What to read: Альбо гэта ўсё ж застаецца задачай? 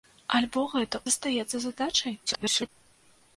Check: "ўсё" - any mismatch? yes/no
yes